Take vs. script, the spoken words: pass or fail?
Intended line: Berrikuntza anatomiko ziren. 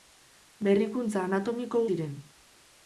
pass